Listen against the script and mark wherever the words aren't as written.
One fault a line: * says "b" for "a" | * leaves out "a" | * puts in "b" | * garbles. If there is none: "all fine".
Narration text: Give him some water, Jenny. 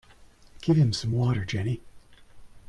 all fine